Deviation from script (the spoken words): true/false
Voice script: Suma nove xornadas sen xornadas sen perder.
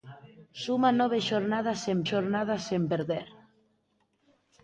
false